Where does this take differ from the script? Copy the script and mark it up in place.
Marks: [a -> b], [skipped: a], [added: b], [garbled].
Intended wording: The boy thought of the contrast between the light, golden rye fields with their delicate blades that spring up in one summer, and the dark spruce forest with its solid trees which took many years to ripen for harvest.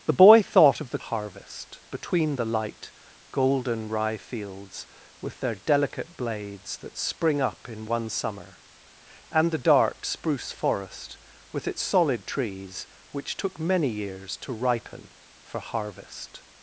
The boy thought of the [contrast -> harvest] between the light, golden rye fields with their delicate blades that spring up in one summer, and the dark spruce forest with its solid trees which took many years to ripen for harvest.